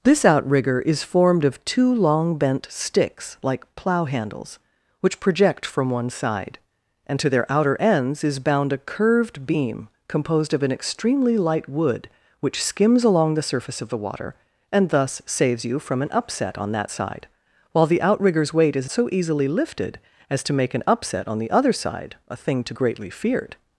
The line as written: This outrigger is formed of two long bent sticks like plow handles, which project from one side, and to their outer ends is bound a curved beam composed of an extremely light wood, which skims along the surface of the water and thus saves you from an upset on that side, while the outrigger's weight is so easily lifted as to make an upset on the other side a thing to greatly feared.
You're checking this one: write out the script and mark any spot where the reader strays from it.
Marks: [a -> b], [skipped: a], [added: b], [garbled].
This outrigger is formed of two long bent sticks like plow handles, which project from one side, and to their outer ends is bound a curved beam composed of an extremely light wood, which skims along the surface of the water and thus saves you from an upset on that side, while the outrigger's weight is so easily lifted as to make an upset on the other side a thing to greatly feared.